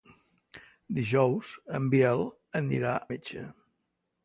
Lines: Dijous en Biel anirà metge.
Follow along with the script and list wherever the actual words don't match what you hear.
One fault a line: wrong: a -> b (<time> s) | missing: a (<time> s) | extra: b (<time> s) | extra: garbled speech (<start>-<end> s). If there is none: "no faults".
no faults